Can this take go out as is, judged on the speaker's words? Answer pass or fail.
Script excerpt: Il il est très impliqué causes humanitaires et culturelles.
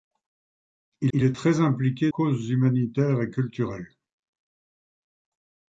pass